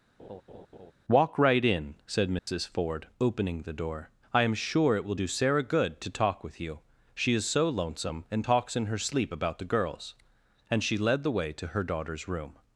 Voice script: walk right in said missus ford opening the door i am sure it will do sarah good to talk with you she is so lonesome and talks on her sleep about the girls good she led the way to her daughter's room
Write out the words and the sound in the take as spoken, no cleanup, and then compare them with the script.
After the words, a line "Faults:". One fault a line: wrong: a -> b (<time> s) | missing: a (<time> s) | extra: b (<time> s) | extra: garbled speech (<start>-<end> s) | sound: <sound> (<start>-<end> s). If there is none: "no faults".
walk right in said missus ford opening the door i am sure it will do sarah good to talk with you she is so lonesome and talks in her sleep about the girls and she led the way to her daughter's room
Faults:
sound: laugh (0.2-0.9 s)
sound: dropout (2.4-2.5 s)
wrong: on -> in (8.7 s)
wrong: good -> and (10.7 s)